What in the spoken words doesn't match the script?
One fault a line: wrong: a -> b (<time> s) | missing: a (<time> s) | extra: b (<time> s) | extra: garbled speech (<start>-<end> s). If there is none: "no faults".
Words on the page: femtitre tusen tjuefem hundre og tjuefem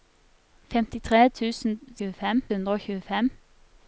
no faults